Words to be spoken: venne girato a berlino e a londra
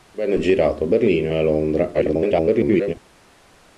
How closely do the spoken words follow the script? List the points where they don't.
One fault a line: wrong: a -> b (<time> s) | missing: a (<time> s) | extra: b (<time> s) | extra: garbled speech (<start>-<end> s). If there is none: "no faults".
extra: garbled speech (1.9-2.9 s)